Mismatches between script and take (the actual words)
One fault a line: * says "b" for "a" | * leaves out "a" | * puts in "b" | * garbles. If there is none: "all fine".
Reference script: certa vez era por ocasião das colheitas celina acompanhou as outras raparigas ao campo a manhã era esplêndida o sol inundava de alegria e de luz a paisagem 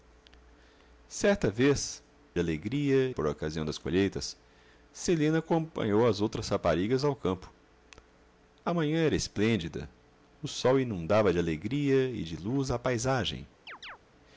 * says "alegria" for "era"